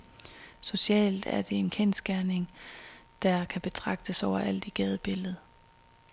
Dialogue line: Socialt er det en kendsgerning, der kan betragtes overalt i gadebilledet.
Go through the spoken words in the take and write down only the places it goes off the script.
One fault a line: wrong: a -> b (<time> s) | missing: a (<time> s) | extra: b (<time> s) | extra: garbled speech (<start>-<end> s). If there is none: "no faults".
no faults